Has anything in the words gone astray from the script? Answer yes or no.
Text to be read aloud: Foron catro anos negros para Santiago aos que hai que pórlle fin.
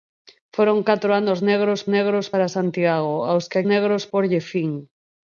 yes